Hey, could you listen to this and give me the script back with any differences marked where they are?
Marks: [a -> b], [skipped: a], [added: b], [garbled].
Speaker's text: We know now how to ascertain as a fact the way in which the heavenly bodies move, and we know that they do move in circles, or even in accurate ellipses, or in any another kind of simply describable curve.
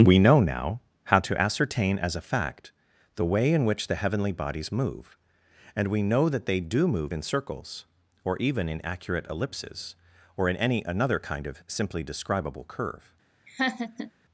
We know now how to ascertain as a fact the way in which the heavenly bodies move, and we know that they do move in circles, or even in accurate ellipses, or in any another kind of simply describable curve.